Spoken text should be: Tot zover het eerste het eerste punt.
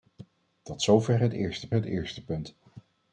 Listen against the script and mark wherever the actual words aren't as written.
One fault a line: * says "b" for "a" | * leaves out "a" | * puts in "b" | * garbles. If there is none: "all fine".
all fine